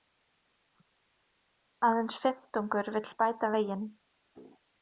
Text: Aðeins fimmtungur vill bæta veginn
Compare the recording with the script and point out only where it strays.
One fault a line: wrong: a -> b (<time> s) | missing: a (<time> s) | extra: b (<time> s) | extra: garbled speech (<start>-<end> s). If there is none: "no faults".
no faults